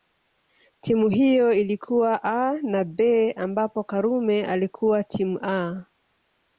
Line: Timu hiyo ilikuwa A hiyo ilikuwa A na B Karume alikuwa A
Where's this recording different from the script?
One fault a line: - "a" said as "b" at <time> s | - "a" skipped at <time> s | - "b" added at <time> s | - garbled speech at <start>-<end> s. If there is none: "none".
- "hiyo ilikuwa A" skipped at 2.5 s
- "ambapo" added at 3.3 s
- "timu" added at 5.0 s